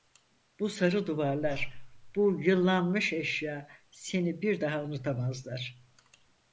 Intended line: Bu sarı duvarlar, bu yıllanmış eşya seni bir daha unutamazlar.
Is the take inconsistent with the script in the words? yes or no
no